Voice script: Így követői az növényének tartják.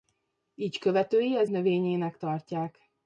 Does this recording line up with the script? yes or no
yes